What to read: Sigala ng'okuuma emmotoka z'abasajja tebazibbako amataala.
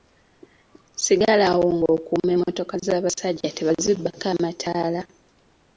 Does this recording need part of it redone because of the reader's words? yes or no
yes